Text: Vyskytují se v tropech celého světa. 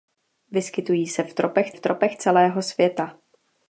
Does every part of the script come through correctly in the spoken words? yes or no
no